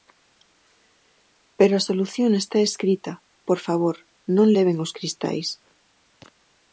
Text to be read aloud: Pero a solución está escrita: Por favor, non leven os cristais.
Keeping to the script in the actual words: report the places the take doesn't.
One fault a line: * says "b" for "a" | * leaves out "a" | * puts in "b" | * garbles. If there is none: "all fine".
all fine